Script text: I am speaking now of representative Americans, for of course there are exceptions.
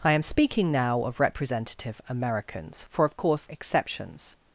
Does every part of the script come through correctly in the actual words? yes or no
no